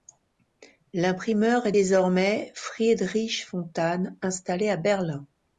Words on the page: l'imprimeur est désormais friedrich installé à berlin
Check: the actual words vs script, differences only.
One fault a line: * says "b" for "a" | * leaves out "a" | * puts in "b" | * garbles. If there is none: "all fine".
* puts in "fontane"